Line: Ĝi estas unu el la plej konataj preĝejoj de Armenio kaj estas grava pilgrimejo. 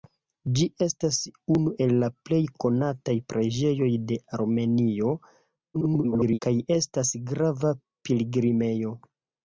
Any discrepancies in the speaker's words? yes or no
yes